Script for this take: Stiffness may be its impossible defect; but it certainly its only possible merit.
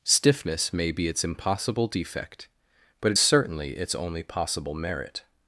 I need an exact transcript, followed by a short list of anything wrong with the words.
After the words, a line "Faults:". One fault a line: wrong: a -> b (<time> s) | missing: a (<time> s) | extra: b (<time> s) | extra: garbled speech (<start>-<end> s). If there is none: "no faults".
Stiffness may be its impossible defect; but it certainly its only possible merit.
Faults:
no faults